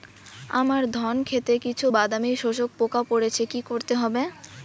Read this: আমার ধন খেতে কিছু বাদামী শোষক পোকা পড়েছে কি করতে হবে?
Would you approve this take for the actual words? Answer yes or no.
yes